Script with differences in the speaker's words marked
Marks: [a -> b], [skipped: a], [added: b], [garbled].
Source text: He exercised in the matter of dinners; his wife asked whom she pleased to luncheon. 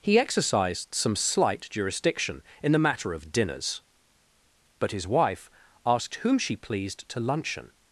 He exercised [added: some slight jurisdiction] in the matter of dinners; [added: but] his wife asked whom she pleased to luncheon.